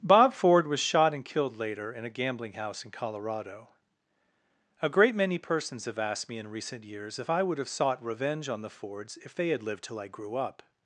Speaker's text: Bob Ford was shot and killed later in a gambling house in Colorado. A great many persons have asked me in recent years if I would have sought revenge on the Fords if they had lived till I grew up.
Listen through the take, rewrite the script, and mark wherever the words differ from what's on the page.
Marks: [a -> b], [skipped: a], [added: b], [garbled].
Bob Ford was shot and killed later in a gambling house in Colorado. A great many persons have asked me in recent years if I would have sought revenge on the Fords if they had lived till I grew up.